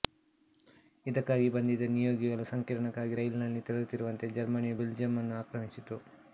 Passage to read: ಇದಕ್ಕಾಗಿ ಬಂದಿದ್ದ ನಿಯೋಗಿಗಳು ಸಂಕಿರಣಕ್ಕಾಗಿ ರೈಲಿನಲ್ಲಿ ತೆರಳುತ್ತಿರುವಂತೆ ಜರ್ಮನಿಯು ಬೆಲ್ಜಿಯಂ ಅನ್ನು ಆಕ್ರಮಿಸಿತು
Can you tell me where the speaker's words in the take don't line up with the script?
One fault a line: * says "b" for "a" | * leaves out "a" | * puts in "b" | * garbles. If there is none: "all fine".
all fine